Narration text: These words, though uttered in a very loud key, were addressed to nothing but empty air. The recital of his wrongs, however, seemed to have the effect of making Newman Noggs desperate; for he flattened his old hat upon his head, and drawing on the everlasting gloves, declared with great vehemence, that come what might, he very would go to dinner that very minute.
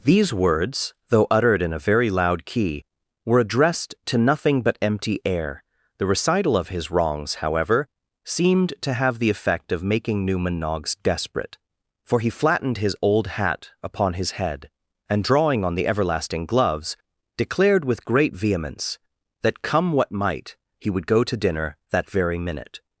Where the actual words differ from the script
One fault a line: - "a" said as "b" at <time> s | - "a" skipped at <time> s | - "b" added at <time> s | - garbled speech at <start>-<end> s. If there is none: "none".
- "very" skipped at 20.9 s